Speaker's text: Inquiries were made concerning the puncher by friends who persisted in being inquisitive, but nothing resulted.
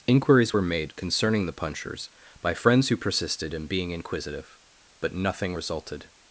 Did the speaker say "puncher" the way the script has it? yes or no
no